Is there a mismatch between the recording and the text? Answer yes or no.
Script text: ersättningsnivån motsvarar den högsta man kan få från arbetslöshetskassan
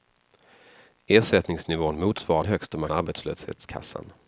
yes